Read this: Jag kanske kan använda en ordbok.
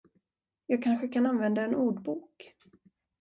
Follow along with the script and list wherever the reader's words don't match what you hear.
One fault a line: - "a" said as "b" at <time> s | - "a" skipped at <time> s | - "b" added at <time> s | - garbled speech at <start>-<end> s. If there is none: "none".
none